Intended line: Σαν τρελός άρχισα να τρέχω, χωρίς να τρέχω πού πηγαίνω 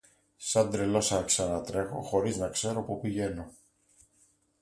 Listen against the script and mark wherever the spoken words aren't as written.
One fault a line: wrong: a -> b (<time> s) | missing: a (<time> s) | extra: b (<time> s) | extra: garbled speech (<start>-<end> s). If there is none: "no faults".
wrong: τρέχω -> ξέρω (2.5 s)